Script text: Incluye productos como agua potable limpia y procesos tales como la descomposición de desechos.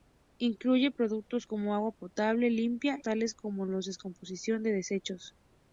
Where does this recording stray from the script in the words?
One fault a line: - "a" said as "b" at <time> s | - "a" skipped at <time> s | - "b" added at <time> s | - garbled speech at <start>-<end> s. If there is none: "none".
- "y procesos" skipped at 3.0 s